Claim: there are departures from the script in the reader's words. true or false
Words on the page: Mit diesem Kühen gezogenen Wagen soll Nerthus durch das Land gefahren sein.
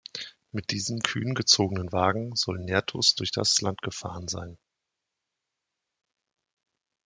false